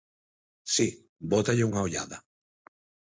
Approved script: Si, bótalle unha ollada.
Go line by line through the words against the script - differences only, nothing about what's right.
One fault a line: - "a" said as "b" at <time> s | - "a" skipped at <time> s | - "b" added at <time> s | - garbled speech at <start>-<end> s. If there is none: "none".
none